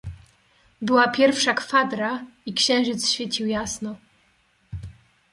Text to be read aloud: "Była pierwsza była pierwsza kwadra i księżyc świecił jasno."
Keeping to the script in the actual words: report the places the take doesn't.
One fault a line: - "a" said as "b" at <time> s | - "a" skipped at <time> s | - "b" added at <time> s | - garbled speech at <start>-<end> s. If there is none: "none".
- "była pierwsza" skipped at 1.5 s